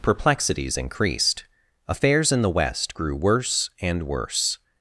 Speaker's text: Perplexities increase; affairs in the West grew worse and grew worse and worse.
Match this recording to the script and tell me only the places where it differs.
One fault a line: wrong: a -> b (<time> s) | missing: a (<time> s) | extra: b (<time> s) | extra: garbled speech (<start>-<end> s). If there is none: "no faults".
wrong: increase -> increased (0.8 s)
missing: grew worse and (4.0 s)